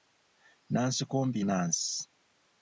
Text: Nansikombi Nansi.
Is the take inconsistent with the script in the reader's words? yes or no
no